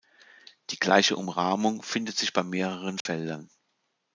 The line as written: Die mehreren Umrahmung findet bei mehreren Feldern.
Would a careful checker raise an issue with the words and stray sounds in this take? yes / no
yes